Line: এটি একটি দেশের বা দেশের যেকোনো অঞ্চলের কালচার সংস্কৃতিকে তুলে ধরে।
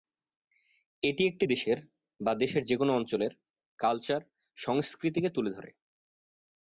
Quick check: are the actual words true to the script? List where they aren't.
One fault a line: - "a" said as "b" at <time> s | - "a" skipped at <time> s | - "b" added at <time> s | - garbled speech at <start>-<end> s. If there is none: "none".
none